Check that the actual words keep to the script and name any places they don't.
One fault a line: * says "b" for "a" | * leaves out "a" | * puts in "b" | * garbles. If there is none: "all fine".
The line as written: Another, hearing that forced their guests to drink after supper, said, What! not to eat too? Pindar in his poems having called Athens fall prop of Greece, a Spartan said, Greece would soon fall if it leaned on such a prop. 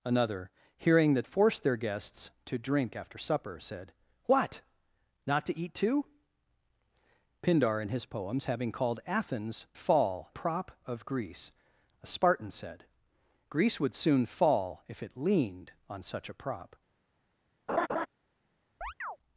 all fine